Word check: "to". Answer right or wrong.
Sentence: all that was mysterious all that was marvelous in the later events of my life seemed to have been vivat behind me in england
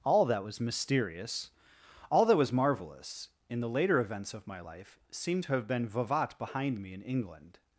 right